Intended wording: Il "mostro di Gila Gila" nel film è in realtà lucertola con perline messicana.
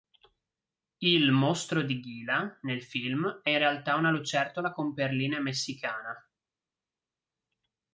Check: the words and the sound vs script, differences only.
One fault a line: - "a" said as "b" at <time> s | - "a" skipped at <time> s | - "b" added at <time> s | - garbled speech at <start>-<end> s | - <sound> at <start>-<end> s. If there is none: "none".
- "Gila" skipped at 2.6 s
- "una" added at 3.9 s